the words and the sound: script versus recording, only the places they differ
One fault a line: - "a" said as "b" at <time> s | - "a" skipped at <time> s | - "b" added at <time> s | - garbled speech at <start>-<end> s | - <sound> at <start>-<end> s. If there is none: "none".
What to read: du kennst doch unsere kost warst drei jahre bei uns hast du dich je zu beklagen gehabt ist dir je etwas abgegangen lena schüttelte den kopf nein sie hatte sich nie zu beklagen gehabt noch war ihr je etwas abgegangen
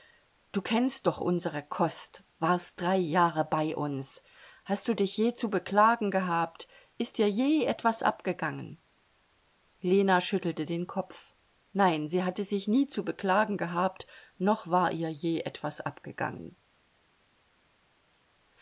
none